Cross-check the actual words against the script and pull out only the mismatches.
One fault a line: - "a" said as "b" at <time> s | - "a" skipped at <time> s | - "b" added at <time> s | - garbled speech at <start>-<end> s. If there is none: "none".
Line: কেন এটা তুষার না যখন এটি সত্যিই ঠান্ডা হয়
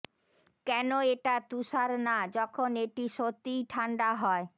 none